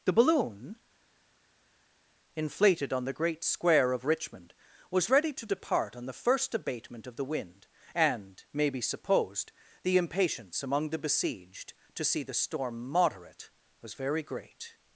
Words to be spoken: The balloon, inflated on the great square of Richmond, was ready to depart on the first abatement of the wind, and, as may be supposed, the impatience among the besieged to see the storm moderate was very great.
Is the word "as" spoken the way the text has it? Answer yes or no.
no